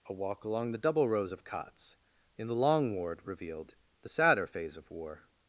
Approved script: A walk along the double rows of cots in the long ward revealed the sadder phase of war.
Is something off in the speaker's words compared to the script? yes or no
no